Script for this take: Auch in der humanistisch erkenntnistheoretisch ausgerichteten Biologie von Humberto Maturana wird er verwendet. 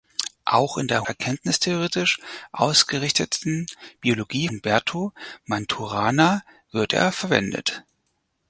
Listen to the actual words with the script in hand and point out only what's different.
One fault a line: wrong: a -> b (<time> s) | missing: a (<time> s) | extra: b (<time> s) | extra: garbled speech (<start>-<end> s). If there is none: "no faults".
missing: humanistisch (1.0 s)
missing: von (4.5 s)